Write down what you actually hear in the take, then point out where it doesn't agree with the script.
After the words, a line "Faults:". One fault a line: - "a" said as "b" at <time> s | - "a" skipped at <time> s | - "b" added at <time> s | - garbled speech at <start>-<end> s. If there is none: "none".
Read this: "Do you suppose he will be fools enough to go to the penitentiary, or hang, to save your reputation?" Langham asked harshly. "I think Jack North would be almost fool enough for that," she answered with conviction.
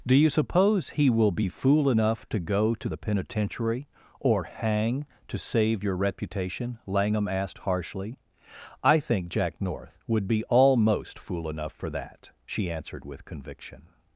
"Do you suppose he will be fool enough to go to the penitentiary, or hang, to save your reputation?" Langham asked harshly. "I think Jack North would be almost fool enough for that," she answered with conviction.
Faults:
- "fools" said as "fool" at 1.5 s